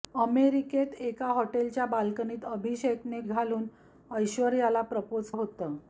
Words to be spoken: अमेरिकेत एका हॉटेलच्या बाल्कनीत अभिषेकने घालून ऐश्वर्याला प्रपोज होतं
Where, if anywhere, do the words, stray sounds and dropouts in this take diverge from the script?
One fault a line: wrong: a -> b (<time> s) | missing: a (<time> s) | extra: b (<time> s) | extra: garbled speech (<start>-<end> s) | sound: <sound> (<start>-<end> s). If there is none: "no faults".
no faults